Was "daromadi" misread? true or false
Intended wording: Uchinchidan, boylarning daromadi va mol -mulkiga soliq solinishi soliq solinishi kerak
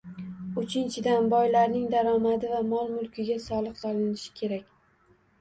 false